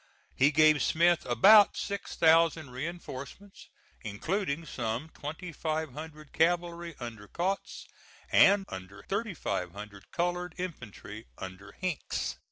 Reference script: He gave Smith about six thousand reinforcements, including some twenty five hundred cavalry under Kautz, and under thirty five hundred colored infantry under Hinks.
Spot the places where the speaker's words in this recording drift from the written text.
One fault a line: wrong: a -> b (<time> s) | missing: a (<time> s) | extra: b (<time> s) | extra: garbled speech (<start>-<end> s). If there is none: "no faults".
no faults